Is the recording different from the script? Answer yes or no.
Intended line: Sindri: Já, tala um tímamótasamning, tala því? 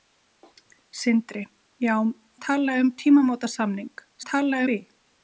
no